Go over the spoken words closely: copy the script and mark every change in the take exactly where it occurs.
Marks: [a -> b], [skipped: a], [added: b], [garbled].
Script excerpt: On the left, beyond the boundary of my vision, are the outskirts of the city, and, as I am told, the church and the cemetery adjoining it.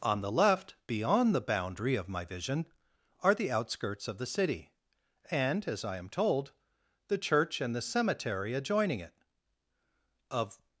On the left, beyond the boundary of my vision, are the outskirts of the city, and, as I am told, the church and the cemetery adjoining it. [added: Of]